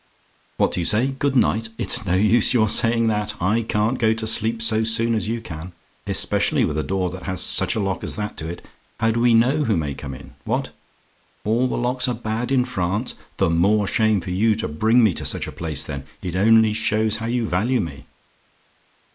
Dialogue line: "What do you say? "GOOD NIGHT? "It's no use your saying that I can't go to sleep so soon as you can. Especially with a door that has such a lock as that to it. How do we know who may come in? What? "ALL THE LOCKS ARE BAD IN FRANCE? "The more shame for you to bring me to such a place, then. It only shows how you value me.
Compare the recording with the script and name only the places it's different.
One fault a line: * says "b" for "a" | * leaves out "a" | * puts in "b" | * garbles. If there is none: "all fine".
all fine